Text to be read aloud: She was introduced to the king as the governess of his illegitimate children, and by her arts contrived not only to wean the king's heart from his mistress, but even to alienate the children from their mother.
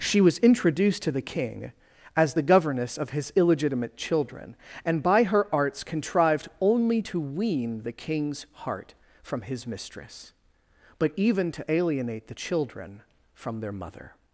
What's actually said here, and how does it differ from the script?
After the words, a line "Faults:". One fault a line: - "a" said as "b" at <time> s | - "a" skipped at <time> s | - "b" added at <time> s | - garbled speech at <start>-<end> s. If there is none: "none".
She was introduced to the king as the governess of his illegitimate children, and by her arts contrived only to wean the king's heart from his mistress, but even to alienate the children from their mother.
Faults:
- "not" skipped at 6.5 s